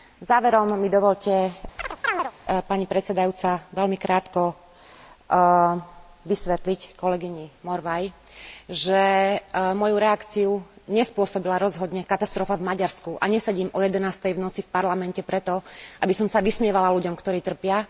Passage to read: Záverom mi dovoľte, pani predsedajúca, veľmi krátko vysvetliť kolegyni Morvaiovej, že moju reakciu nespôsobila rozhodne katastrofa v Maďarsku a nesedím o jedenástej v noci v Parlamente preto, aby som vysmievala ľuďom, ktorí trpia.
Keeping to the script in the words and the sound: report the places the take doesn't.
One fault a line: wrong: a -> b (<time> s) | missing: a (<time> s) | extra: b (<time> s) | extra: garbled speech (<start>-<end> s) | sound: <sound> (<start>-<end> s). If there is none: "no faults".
sound: chirp (1.8-2.3 s)
extra: sa (16.3 s)